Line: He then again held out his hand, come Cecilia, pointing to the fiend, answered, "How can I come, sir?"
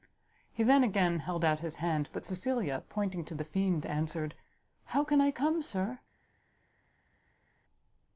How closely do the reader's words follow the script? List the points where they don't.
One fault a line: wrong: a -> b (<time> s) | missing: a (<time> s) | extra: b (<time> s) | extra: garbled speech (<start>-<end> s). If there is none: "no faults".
wrong: come -> but (2.1 s)